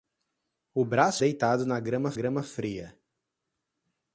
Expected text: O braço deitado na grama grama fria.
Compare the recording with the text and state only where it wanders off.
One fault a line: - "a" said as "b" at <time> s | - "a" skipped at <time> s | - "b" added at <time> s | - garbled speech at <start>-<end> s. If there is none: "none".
none